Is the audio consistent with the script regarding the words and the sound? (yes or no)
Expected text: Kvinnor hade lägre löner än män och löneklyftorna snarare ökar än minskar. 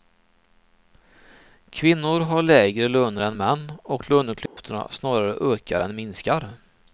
no